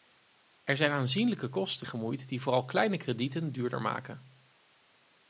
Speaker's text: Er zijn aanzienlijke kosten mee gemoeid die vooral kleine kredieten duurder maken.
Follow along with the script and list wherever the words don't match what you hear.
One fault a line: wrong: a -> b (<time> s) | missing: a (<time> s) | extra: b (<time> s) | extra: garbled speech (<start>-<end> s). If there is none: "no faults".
missing: mee (1.9 s)